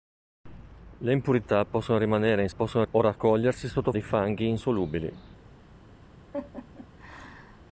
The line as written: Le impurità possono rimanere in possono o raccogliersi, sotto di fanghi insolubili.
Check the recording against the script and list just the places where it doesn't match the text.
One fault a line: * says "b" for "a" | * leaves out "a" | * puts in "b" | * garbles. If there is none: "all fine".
all fine